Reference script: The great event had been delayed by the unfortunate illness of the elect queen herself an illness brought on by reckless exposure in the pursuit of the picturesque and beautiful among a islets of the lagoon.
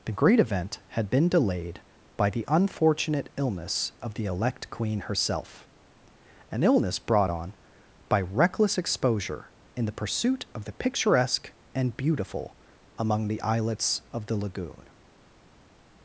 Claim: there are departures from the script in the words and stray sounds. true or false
true